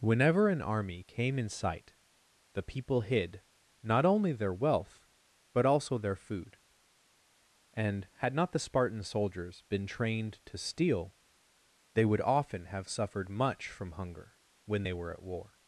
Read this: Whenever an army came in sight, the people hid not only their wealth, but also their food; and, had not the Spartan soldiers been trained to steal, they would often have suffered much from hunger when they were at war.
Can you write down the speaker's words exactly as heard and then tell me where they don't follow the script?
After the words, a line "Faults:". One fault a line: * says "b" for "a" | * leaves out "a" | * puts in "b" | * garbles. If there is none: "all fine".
Whenever an army came in sight, the people hid not only their wealth, but also their food; and, had not the Spartan soldiers been trained to steal, they would often have suffered much from hunger when they were at war.
Faults:
all fine